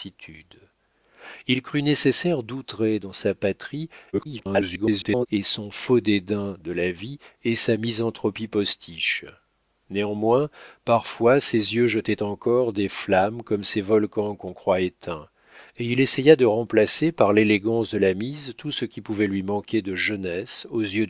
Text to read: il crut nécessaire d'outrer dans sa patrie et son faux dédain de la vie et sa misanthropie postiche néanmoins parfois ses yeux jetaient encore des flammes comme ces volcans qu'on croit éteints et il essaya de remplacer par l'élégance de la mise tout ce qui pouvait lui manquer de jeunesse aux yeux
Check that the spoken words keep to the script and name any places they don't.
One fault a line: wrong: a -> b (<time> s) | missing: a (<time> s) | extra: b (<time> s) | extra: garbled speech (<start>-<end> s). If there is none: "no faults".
extra: garbled speech (4.1-5.3 s)